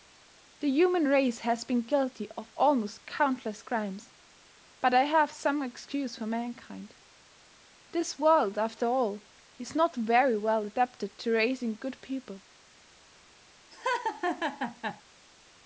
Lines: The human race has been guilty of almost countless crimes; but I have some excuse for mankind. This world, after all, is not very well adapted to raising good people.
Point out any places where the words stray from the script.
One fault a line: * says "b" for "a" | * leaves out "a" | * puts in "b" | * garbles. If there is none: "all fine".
all fine